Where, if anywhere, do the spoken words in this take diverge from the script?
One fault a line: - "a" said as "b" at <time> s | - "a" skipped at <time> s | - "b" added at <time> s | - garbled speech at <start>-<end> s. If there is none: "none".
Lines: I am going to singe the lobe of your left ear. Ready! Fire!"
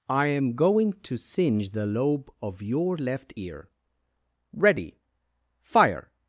none